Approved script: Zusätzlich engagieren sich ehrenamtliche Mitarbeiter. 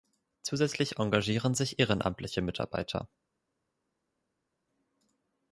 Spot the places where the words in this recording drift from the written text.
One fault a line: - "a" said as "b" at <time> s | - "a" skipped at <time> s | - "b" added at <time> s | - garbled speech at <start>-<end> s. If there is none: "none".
none